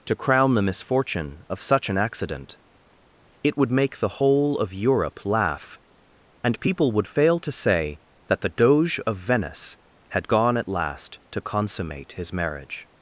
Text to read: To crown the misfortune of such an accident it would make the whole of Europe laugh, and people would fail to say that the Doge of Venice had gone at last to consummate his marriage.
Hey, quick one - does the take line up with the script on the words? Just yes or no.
yes